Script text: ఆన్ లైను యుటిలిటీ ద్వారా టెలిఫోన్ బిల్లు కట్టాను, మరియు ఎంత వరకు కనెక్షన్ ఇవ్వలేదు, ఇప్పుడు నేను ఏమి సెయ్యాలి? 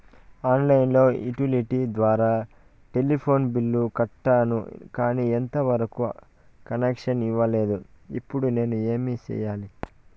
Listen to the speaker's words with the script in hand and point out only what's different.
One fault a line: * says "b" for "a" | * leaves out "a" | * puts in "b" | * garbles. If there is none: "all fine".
* says "కానీ" for "మరియు"